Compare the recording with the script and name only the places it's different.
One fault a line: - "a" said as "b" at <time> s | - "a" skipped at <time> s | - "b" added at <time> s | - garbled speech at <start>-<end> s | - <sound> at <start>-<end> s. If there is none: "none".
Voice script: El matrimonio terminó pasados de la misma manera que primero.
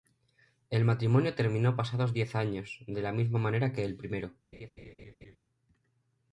- "diez años" added at 2.1 s
- "el" added at 3.9 s
- laugh at 4.5-5.4 s